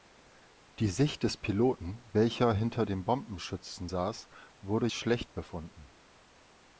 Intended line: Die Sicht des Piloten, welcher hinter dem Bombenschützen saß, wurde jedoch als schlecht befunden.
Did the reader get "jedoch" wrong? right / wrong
wrong